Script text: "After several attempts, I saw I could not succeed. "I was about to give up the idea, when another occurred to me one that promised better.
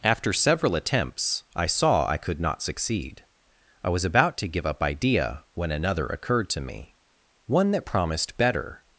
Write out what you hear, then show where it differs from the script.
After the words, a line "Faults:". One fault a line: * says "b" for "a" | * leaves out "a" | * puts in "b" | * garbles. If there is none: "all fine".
"After several attempts, I saw I could not succeed. "I was about to give up idea, when another occurred to me one that promised better.
Faults:
* leaves out "the"